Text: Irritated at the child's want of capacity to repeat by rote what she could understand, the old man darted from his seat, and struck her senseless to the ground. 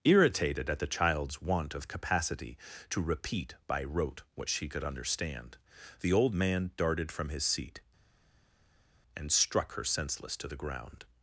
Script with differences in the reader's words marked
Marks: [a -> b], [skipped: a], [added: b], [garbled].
Irritated at the child's want of capacity to repeat by rote what she could understand, the old man darted from his seat, and struck her senseless to the ground.